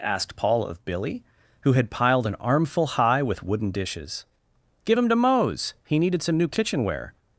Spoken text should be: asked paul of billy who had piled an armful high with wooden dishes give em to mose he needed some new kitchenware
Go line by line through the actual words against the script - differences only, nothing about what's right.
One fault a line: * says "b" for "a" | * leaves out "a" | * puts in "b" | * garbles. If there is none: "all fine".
all fine